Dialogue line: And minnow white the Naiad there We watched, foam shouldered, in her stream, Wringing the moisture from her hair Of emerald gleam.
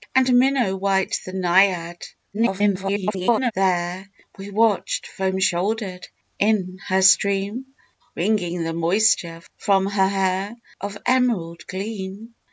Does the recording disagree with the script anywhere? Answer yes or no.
yes